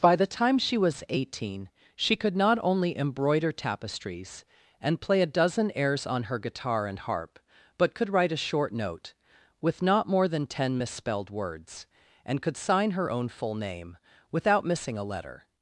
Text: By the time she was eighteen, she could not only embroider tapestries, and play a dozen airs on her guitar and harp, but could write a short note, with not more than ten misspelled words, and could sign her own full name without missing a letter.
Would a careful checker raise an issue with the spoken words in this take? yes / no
no